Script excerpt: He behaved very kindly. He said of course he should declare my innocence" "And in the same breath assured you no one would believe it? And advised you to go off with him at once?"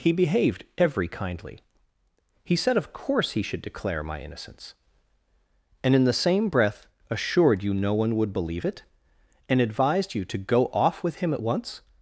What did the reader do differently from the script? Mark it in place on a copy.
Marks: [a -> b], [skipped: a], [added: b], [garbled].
He behaved [very -> every] kindly. He said of course he should declare my innocence" "And in the same breath assured you no one would believe it? And advised you to go off with him at once?"